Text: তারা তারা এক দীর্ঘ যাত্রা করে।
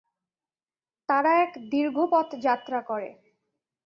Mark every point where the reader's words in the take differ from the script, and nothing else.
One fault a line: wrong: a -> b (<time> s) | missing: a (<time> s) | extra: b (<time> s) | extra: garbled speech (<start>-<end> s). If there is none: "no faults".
missing: তারা (1.3 s)
extra: পথ (2.1 s)